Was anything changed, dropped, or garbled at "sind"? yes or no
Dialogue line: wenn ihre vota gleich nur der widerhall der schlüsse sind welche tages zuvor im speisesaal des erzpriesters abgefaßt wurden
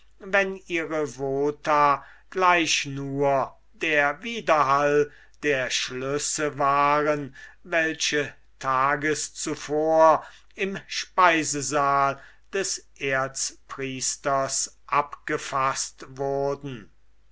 yes